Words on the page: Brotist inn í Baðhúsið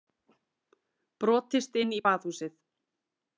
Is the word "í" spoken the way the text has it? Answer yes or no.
yes